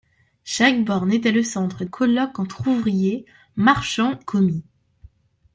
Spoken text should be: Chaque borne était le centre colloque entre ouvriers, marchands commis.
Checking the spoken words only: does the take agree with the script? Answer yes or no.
yes